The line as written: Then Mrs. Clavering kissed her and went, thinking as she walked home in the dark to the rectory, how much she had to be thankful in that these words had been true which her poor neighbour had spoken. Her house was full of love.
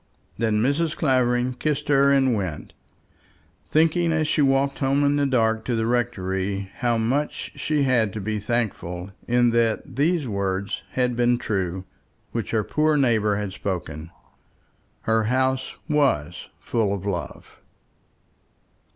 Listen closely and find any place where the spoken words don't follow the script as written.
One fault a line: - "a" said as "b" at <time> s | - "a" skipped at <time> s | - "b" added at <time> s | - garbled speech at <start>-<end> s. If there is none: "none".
none